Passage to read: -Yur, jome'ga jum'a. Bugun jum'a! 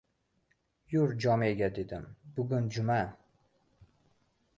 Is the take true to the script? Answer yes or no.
no